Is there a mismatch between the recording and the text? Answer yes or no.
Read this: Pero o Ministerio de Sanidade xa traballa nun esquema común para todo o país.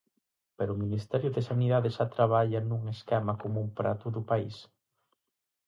no